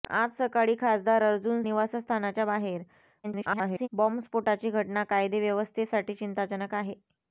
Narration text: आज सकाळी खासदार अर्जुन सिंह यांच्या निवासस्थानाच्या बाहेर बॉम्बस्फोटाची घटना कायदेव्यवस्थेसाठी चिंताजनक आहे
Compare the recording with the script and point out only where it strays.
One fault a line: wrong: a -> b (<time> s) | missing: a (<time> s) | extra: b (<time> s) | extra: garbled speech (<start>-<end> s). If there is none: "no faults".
missing: सिंह यांच्या (1.6 s)
extra: garbled speech (3.2-3.9 s)